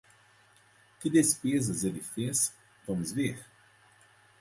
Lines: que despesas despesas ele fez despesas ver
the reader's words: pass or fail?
fail